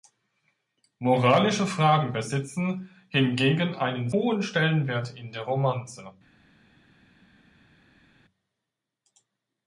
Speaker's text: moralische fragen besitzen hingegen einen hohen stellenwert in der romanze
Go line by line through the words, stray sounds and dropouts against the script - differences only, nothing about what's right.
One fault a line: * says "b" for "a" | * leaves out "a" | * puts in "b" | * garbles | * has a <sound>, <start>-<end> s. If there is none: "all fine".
all fine